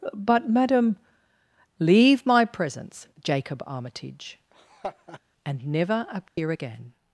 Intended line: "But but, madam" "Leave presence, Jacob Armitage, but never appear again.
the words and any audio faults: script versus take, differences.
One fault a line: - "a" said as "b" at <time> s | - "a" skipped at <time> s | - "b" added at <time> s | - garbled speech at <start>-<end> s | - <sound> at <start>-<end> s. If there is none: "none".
- "but" skipped at 0.5 s
- "my" added at 2.2 s
- laugh at 4.5-5.2 s
- "but" said as "and" at 5.4 s
- dropout at 6.3-6.4 s